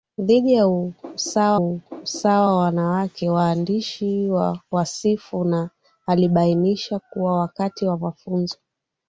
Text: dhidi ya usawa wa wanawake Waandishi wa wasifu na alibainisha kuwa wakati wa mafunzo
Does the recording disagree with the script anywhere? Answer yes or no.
yes